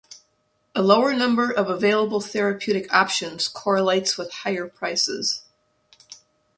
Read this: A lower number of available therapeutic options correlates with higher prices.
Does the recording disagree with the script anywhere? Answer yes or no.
no